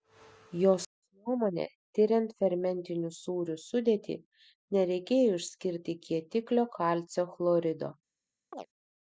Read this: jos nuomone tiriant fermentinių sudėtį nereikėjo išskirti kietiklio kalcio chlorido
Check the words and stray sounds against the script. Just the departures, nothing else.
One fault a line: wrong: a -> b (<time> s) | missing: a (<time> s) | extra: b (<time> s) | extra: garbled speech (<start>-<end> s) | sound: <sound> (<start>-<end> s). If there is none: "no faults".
extra: sūrių (3.2 s)
sound: chirp (8.5-8.7 s)